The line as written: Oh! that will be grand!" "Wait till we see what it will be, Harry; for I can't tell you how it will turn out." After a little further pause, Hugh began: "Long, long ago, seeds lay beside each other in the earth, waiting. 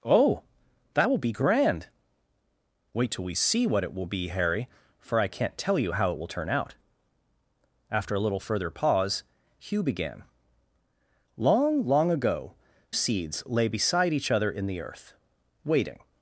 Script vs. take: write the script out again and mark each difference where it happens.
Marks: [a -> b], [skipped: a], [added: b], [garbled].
Oh! that will be grand!" "Wait till we see what it will be, Harry; for I can't tell you how it will turn out." After a little further pause, Hugh began: "Long, long ago, seeds lay beside each other in the earth, waiting.